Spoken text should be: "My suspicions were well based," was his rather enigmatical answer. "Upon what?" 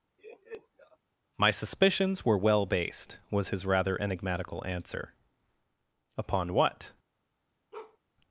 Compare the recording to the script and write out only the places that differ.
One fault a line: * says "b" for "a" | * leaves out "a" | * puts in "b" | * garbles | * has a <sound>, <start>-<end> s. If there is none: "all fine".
* has a laugh, 0.2-1.0 s
* has a bark, 7.7-8.0 s